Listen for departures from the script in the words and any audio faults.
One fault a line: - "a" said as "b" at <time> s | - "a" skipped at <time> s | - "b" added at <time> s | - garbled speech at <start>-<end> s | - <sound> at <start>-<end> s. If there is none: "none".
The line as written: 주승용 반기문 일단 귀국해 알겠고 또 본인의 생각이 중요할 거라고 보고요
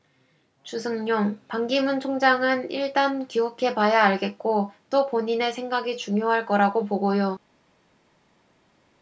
- "총장은" added at 2.0 s
- "봐야" added at 3.7 s